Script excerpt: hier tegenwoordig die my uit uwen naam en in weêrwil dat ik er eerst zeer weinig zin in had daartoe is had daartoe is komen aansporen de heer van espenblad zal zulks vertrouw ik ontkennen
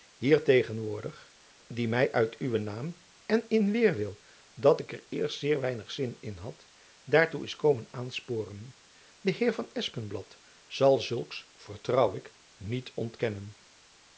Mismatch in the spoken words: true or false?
true